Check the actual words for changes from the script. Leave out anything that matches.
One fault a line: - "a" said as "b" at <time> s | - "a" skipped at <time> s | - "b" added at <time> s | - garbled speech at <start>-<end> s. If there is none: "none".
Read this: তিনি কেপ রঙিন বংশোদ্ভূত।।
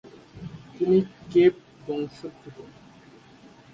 - "রঙিন" skipped at 1.6 s